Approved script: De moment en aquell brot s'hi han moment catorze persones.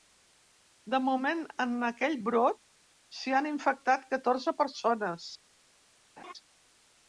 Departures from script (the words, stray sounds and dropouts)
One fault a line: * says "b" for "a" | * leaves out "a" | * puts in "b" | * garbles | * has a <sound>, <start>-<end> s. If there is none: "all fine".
* says "infectat" for "moment"
* has a laugh, 6.2-6.3 s